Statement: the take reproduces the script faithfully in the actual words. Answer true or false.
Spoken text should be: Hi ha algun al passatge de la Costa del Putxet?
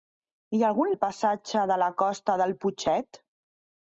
true